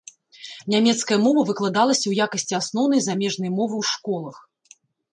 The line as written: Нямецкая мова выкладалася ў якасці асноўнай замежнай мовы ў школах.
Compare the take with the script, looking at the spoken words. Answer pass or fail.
pass